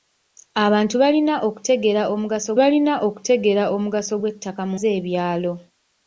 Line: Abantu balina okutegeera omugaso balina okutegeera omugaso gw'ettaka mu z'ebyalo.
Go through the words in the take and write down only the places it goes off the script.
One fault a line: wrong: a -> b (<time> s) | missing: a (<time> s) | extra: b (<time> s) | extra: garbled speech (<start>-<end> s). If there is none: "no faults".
no faults